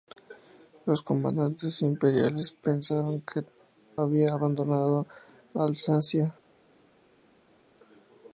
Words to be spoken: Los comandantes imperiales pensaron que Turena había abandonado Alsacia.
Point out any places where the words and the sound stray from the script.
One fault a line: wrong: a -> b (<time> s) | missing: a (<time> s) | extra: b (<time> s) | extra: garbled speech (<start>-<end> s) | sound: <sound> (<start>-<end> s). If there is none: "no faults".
missing: Turena (3.4 s)